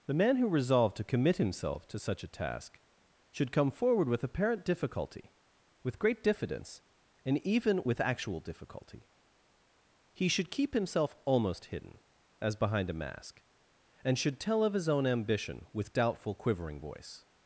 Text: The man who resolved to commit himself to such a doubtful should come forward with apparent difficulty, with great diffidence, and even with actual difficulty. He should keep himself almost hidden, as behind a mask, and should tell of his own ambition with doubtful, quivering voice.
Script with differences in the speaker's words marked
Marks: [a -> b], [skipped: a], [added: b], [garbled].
The man who resolved to commit himself to such a [doubtful -> task] should come forward with apparent difficulty, with great diffidence, and even with actual difficulty. He should keep himself almost hidden, as behind a mask, and should tell of his own ambition with doubtful, quivering voice.